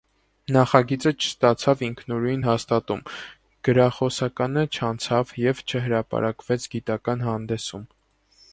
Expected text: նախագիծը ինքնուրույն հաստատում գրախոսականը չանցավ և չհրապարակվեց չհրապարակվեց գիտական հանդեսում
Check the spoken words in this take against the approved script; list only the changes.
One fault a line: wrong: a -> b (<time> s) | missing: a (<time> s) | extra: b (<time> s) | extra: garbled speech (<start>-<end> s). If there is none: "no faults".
extra: չստացավ (1.2 s)
missing: չհրապարակվեց (6.7 s)